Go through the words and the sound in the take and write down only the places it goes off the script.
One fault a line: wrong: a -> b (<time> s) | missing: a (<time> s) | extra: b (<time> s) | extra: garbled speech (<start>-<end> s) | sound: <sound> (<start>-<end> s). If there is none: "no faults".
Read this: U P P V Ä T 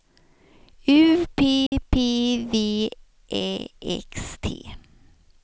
sound: dropout (1.7-1.7 s)
extra: X (4.1 s)